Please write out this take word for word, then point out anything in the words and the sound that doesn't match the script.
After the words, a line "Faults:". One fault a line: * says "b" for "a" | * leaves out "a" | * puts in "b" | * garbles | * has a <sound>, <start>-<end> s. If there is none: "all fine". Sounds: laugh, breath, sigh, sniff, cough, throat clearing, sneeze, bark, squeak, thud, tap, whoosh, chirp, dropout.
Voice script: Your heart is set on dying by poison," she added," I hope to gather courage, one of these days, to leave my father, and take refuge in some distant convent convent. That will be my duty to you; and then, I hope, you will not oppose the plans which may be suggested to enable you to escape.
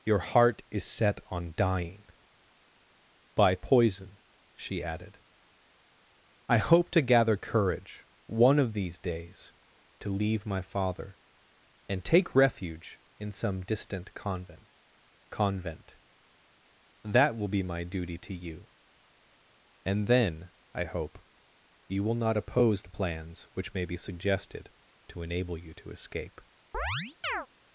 Your heart is set on dying by poison," she added," I hope to gather courage, one of these days, to leave my father, and take refuge in some distant convent convent. That will be my duty to you; and then, I hope, you will not oppose the plans which may be suggested to enable you to escape.
Faults:
* has a chirp, 26.7-27.5 s